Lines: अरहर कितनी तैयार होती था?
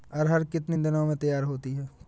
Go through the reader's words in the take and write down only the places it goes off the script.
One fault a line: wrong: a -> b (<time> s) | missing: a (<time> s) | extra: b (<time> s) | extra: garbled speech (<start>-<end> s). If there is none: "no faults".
extra: दिन में (0.8 s)
wrong: था -> है (1.7 s)